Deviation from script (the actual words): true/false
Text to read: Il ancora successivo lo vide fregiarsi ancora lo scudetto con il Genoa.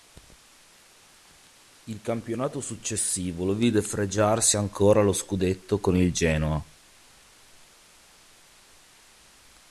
true